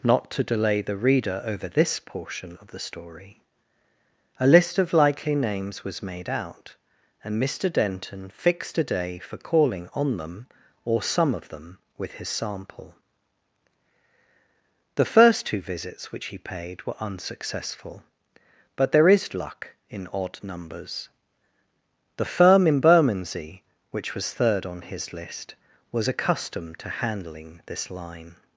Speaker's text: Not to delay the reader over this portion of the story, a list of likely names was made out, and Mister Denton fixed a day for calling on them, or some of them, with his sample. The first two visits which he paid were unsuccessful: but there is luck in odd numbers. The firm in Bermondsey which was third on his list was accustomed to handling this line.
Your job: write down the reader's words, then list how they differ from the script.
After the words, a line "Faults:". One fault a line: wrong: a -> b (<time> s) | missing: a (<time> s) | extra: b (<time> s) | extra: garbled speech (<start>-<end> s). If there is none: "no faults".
Not to delay the reader over this portion of the story, a list of likely names was made out, and Mister Denton fixed a day for calling on them, or some of them, with his sample. The first two visits which he paid were unsuccessful: but there is luck in odd numbers. The firm in Bermondsey which was third on his list was accustomed to handling this line.
Faults:
no faults